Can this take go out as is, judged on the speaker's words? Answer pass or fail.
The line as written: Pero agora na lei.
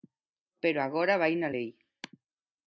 fail